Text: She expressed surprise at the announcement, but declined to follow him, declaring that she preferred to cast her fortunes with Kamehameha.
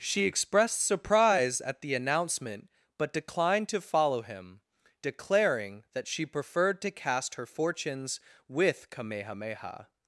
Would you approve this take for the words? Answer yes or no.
yes